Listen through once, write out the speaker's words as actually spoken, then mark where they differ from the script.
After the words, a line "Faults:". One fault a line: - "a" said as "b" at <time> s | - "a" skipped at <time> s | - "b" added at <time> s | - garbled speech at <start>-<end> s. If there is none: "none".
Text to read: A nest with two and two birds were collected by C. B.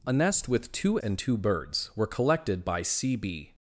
A nest with two and two birds were collected by C. B.
Faults:
none